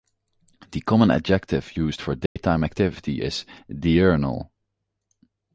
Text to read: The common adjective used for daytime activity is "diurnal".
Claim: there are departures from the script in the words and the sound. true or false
true